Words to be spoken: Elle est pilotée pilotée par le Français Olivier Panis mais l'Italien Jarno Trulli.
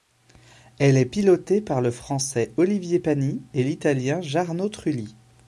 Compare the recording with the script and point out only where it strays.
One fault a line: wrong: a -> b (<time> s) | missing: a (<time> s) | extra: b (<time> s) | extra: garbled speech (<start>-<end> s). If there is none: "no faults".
missing: pilotée (1.6 s)
wrong: mais -> et (3.5 s)